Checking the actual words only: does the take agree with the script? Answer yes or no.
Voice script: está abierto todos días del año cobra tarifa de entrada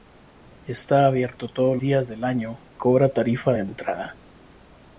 yes